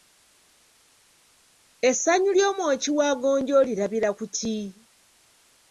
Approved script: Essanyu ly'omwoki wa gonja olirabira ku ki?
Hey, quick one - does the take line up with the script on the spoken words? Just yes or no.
yes